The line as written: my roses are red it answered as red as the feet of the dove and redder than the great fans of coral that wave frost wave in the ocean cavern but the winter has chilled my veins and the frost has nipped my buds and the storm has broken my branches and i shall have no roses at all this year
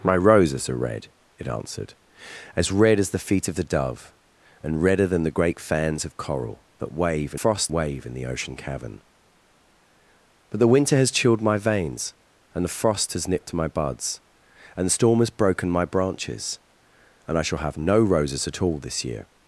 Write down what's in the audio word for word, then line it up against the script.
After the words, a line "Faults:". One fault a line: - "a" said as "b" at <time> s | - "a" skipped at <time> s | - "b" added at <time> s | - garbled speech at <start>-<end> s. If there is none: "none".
my roses are red it answered as red as the feet of the dove and redder than the great fans of coral that wave frost wave in the ocean cavern but the winter has chilled my veins and the frost has nipped my buds and the storm has broken my branches and i shall have no roses at all this year
Faults:
none